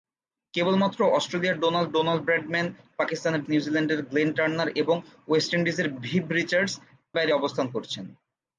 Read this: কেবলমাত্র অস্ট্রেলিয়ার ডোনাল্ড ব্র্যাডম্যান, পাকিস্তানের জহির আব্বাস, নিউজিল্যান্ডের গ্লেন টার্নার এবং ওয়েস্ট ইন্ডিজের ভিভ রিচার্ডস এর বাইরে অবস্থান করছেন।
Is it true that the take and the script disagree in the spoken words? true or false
true